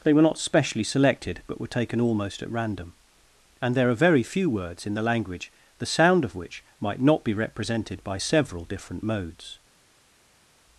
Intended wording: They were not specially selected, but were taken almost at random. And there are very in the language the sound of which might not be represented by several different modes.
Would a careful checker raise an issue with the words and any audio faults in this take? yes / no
yes